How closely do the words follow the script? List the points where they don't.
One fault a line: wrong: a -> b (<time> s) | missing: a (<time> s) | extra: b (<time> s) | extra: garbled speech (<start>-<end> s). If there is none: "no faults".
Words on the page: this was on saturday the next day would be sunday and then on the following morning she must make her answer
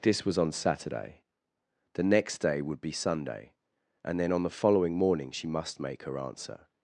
no faults